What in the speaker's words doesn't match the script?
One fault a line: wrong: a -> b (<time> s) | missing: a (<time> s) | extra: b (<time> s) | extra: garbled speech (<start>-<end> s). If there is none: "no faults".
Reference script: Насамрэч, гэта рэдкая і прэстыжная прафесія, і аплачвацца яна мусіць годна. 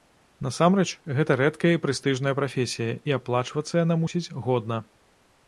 no faults